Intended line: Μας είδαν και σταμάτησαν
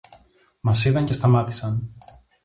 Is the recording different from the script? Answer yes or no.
no